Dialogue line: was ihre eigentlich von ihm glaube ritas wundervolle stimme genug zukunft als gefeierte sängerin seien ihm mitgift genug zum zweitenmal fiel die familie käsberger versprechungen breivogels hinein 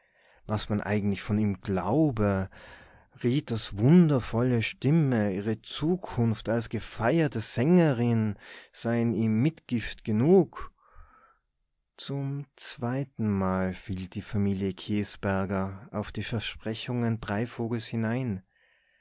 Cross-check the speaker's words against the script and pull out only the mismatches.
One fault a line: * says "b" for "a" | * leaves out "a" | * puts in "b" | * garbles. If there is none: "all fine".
* says "man" for "ihre"
* says "ihre" for "genug"
* puts in "auf die"